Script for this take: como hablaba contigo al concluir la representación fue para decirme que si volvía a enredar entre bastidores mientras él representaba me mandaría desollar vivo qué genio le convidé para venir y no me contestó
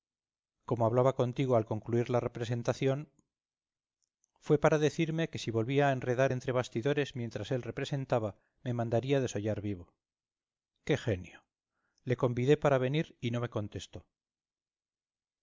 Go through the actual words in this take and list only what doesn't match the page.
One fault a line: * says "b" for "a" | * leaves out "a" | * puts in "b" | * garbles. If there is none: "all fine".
all fine